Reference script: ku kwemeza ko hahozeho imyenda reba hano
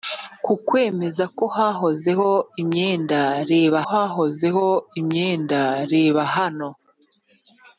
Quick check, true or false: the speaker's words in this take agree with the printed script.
false